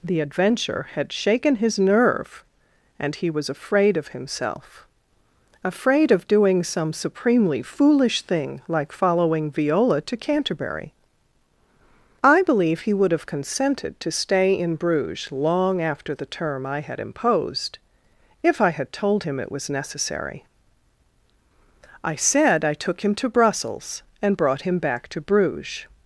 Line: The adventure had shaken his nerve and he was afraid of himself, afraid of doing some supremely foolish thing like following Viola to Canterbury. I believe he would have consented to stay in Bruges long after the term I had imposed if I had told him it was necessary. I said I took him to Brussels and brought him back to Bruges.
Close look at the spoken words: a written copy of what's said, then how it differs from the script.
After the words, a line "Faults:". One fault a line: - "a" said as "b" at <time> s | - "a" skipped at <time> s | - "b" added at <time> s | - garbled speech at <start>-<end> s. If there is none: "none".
The adventure had shaken his nerve and he was afraid of himself, afraid of doing some supremely foolish thing like following Viola to Canterbury. I believe he would have consented to stay in Bruges long after the term I had imposed if I had told him it was necessary. I said I took him to Brussels and brought him back to Bruges.
Faults:
none